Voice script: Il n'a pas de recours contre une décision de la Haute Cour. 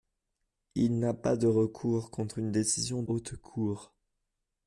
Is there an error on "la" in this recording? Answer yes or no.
yes